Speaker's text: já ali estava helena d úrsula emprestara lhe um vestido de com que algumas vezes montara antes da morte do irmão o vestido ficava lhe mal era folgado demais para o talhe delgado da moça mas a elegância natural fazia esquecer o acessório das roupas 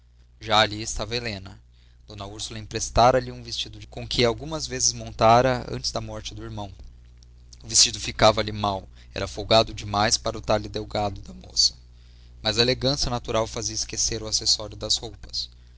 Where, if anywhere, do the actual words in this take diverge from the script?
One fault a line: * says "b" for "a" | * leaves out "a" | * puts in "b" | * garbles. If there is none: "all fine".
all fine